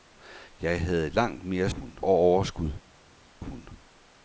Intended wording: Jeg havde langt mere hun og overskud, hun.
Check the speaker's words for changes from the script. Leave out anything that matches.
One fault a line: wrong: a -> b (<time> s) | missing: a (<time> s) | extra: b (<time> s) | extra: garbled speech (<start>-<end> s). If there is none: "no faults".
no faults